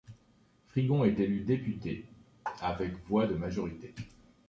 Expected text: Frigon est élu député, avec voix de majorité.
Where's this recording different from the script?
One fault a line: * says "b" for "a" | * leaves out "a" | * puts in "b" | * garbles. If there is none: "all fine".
all fine